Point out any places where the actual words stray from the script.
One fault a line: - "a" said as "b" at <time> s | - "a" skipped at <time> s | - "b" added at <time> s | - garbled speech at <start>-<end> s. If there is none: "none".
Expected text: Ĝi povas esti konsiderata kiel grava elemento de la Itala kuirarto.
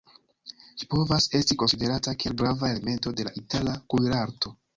none